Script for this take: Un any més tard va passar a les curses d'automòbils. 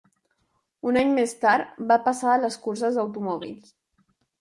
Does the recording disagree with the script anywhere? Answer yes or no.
no